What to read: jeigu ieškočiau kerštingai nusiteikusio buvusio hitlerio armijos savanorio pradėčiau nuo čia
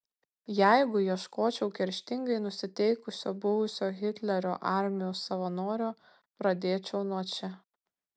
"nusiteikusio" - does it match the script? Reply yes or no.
yes